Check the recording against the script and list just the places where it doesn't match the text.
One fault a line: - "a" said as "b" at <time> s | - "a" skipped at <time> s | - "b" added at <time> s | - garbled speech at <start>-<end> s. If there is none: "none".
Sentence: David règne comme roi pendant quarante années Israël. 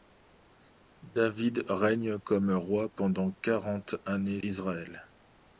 none